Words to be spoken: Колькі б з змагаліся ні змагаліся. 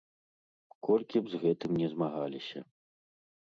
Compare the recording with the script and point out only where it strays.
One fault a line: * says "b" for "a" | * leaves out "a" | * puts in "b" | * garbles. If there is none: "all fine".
* says "гэтым" for "змагаліся"